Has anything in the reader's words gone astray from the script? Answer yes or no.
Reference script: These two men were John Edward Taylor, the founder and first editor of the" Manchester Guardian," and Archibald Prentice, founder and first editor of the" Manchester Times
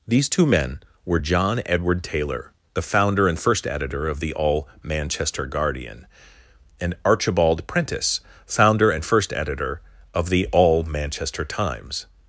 yes